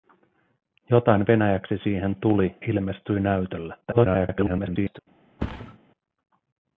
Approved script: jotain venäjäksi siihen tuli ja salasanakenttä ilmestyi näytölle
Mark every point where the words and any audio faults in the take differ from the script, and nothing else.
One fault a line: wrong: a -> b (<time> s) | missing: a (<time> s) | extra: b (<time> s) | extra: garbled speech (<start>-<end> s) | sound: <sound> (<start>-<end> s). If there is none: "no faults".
missing: ja salasanakenttä (2.5 s)
extra: garbled speech (3.8-5.0 s)
sound: thud (5.4-5.8 s)